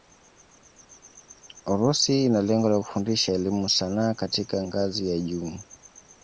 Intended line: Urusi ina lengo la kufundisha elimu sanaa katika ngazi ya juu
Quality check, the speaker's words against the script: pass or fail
pass